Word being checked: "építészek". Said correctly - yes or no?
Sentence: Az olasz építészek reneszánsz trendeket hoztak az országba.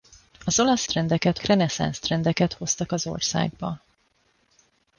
no